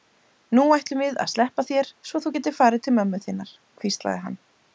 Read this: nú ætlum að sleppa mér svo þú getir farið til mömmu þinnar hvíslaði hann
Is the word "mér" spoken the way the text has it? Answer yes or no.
no